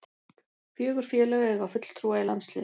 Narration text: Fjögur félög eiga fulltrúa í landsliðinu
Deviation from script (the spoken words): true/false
false